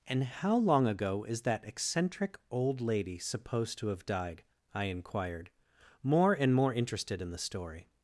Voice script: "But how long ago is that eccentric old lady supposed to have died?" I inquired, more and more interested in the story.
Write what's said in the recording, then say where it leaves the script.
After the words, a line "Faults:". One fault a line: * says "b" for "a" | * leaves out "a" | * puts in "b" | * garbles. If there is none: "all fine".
"And how long ago is that eccentric old lady supposed to have died?" I inquired, more and more interested in the story.
Faults:
* says "And" for "But"